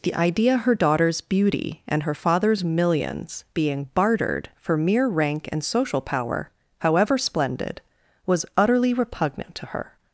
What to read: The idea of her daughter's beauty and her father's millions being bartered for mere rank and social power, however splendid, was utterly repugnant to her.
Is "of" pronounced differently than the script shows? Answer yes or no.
yes